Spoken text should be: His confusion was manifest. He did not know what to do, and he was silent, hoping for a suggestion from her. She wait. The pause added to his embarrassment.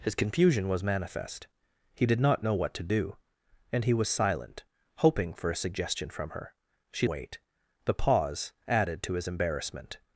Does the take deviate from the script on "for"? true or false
false